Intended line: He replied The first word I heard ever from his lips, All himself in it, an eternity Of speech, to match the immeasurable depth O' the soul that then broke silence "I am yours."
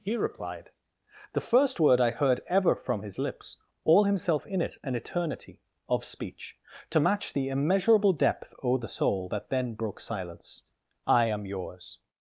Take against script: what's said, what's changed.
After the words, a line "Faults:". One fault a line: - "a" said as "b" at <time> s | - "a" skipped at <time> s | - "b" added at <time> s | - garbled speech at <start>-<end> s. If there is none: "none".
He replied The first word I heard ever from his lips, All himself in it, an eternity Of speech, to match the immeasurable depth O' the soul that then broke silence "I am yours."
Faults:
none